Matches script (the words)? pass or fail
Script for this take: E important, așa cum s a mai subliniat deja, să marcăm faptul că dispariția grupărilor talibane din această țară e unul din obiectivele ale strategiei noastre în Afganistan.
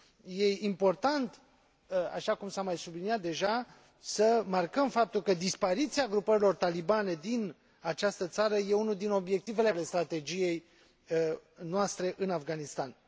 pass